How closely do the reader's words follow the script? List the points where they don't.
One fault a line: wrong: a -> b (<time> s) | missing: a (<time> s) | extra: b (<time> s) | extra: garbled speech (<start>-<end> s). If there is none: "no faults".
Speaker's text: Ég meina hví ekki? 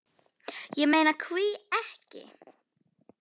no faults